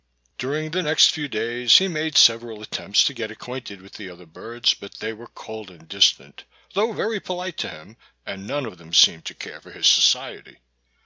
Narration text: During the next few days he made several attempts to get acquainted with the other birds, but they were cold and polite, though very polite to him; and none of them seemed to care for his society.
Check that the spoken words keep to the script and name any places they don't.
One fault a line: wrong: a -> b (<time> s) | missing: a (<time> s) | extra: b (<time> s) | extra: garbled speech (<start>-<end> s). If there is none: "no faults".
wrong: polite -> distant (5.9 s)